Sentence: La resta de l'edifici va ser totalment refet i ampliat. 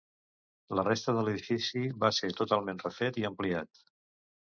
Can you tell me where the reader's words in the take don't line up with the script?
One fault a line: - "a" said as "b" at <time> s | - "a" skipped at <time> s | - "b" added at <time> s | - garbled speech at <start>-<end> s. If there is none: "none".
none